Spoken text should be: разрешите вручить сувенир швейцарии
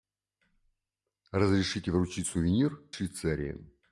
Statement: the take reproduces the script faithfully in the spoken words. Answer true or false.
true